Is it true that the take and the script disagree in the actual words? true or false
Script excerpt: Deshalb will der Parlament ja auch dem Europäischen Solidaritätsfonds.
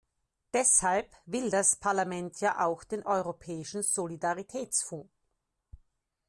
true